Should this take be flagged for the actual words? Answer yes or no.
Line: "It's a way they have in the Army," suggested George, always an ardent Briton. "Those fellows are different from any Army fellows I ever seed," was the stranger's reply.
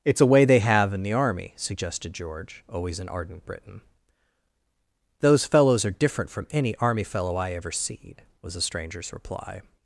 yes